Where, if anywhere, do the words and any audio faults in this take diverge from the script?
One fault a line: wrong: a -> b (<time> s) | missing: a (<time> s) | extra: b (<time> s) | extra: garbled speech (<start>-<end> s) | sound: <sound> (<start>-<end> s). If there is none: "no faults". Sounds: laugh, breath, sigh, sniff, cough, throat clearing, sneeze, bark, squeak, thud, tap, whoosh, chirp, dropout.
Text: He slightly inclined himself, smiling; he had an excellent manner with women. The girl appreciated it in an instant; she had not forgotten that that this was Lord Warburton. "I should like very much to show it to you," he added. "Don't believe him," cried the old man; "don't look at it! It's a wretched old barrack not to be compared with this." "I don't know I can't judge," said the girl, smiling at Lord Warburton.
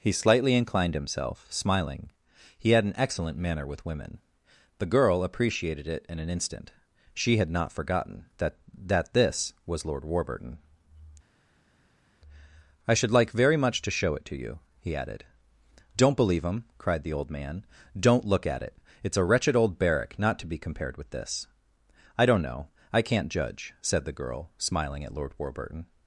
no faults